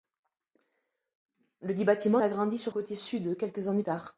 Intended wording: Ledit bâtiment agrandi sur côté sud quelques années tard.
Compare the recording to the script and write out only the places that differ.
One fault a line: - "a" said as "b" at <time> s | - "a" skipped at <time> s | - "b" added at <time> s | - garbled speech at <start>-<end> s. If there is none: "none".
none